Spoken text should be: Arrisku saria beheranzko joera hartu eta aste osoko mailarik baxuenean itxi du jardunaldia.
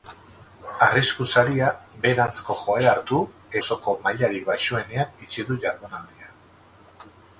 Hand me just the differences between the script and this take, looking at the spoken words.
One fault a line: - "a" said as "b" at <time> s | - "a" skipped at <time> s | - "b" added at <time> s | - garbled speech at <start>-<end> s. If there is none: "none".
- "eta aste" skipped at 3.2 s